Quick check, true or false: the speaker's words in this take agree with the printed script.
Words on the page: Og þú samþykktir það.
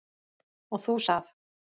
false